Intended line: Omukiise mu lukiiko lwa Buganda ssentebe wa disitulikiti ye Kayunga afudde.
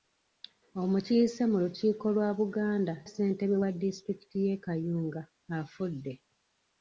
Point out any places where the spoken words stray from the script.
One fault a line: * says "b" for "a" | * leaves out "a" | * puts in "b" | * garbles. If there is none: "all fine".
all fine